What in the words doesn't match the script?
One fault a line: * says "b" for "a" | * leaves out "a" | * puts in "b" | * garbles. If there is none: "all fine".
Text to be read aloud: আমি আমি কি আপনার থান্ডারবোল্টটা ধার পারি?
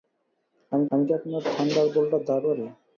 all fine